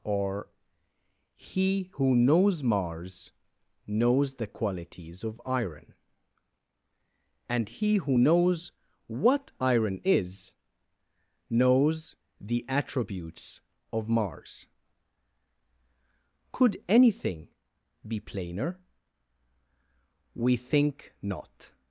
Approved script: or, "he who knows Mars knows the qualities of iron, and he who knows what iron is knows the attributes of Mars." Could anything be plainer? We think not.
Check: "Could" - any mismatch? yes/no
no